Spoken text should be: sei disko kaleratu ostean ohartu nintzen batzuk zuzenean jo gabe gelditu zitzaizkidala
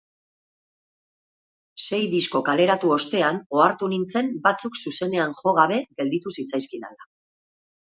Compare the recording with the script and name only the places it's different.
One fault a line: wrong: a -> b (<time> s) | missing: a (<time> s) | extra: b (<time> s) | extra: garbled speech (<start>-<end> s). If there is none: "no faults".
no faults